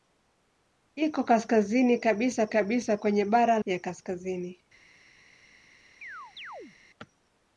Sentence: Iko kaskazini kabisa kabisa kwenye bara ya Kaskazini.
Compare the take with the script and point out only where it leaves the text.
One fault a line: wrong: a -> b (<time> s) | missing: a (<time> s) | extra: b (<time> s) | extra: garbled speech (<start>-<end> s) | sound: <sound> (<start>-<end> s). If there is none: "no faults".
sound: chirp (6.0-6.8 s)